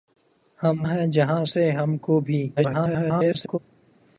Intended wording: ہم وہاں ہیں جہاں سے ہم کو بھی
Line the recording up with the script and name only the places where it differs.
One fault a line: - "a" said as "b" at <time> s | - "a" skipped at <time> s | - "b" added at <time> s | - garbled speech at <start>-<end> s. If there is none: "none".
- "وہاں" skipped at 0.9 s
- garbled speech at 2.6-3.6 s